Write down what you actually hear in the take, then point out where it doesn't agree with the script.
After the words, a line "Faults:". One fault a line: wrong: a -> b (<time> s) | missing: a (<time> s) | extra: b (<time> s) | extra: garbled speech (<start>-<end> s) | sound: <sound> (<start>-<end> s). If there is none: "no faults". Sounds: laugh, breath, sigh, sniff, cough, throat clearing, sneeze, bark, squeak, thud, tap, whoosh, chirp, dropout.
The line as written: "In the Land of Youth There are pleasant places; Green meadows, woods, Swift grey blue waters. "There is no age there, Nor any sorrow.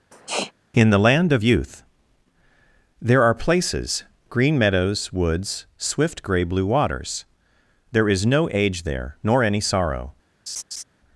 "In the Land of Youth There are places; Green meadows, woods, Swift grey blue waters. "There is no age there, Nor any sorrow.
Faults:
sound: sniff (0.1-0.5 s)
missing: pleasant (3.3 s)
sound: laugh (10.5-10.8 s)